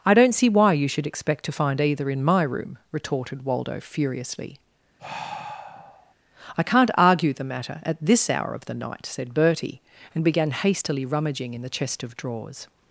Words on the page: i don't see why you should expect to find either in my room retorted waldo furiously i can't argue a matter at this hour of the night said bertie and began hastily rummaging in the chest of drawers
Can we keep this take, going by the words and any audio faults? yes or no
no